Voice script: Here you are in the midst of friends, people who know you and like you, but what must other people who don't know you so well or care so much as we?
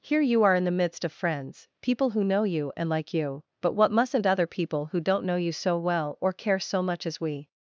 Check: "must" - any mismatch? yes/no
yes